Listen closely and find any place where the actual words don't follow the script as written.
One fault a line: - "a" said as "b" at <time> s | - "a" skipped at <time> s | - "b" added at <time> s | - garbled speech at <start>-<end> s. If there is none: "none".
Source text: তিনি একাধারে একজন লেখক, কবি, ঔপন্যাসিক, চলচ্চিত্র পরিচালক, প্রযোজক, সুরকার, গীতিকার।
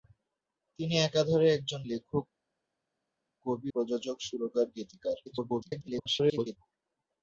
- "ঔপন্যাসিক চলচ্চিত্র পরিচালক" skipped at 3.7 s
- garbled speech at 5.3-6.6 s